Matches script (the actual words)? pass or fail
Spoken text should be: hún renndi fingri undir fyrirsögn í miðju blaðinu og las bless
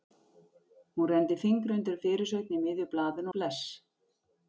fail